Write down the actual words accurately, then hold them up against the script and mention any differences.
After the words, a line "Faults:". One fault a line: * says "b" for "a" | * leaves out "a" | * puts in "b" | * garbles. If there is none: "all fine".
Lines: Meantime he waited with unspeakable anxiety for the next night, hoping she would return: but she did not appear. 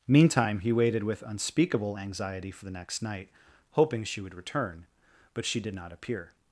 Meantime he waited with unspeakable anxiety for the next night, hoping she would return: but she did not appear.
Faults:
all fine